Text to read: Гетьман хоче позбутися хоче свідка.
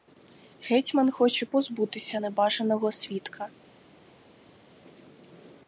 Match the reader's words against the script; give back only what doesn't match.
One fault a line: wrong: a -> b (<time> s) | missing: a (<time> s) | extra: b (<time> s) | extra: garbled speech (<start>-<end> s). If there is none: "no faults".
wrong: хоче -> небажаного (2.2 s)